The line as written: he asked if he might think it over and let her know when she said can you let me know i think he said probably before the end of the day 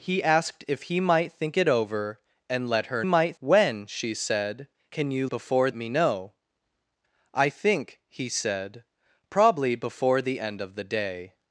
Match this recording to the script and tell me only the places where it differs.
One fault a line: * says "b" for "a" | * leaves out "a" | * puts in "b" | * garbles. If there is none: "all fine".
* says "might" for "know"
* says "before" for "let"